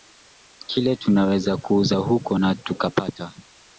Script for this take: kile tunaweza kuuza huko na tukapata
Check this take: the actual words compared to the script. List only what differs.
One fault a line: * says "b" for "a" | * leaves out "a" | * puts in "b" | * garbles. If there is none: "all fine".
all fine